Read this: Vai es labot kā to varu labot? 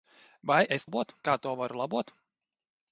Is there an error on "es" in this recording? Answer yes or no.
no